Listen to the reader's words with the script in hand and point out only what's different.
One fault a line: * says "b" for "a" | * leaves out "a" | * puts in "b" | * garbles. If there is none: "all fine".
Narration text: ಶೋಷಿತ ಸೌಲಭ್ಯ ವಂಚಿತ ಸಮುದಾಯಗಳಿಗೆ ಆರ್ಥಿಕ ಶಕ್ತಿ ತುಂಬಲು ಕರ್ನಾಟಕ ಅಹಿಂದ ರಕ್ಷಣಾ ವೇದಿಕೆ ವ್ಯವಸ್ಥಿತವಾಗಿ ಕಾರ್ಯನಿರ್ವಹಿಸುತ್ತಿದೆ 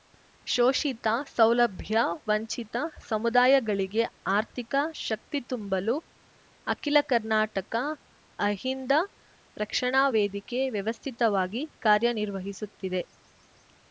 * puts in "ಅಖಿಲ"